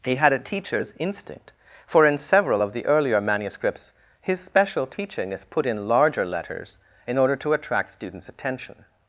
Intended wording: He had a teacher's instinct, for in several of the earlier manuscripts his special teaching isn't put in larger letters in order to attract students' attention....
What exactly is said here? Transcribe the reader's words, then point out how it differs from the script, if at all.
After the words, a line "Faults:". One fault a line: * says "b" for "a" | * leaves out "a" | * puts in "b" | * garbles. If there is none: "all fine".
He had a teacher's instinct, for in several of the earlier manuscripts his special teaching is put in larger letters in order to attract students' attention....
Faults:
* says "is" for "isn't"